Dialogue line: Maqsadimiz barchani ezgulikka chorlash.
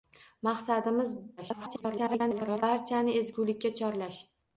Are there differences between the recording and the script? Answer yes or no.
yes